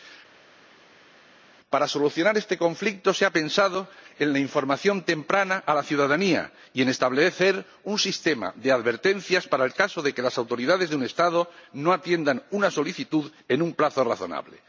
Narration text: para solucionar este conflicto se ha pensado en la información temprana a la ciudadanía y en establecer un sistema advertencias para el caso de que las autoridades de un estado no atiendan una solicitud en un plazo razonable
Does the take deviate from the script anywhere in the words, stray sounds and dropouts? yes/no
yes